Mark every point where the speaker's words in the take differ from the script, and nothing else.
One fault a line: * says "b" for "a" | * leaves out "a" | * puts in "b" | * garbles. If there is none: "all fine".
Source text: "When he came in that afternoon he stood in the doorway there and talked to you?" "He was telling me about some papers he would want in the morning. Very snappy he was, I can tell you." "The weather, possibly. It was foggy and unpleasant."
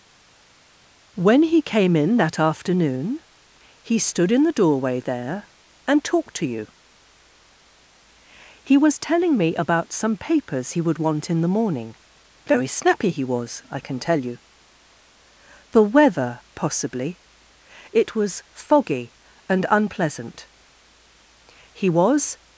* puts in "He was"